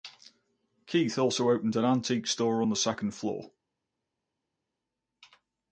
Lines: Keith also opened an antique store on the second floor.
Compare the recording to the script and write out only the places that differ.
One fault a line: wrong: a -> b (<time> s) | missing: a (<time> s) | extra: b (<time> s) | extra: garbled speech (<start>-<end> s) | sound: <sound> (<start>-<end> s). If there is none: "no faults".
no faults